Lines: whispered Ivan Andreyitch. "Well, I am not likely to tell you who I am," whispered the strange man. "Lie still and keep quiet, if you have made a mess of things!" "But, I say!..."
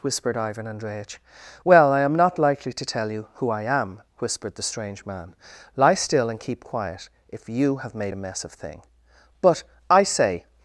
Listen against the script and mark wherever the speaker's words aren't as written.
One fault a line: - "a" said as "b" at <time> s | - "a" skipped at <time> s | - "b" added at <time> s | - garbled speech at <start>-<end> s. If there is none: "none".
- "things" said as "thing" at 8.5 s